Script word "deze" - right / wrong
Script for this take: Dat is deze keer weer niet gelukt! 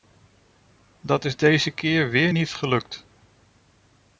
right